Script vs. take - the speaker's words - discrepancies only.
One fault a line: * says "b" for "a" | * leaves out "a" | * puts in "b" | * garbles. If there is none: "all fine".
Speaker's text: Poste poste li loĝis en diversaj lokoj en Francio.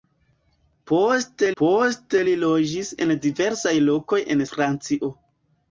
all fine